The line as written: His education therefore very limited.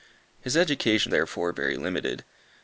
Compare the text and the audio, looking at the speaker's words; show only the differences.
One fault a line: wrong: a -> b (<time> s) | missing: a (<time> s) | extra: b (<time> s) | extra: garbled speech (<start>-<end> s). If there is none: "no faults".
no faults